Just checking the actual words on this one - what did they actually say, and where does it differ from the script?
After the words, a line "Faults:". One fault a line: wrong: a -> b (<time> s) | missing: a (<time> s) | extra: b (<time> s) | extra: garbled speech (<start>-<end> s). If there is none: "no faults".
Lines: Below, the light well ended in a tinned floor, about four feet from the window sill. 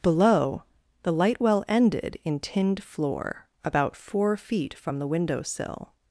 Below, the light well ended in tinned floor, about four feet from the window sill.
Faults:
missing: a (2.4 s)